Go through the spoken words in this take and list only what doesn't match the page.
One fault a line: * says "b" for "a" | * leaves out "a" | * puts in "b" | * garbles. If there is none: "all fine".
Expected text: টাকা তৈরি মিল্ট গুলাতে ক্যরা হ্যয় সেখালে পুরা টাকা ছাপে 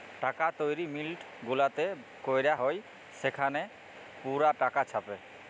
all fine